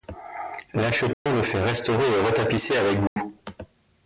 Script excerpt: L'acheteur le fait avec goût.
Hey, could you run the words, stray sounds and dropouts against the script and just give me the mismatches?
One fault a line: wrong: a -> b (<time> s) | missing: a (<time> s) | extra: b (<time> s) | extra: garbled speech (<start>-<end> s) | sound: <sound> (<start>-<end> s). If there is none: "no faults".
sound: dropout (1.1-1.3 s)
extra: restaurer et retapisser (1.6 s)
sound: dropout (3.1-3.2 s)